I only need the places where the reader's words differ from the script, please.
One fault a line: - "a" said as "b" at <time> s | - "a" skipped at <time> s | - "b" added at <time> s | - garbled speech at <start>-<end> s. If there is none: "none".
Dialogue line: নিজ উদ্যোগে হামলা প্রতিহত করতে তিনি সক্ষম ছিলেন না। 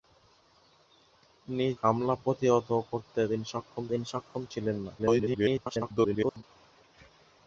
- "উদ্যোগে" skipped at 1.8 s
- "তিনি সক্ষম" added at 3.9 s
- garbled speech at 5.0-6.4 s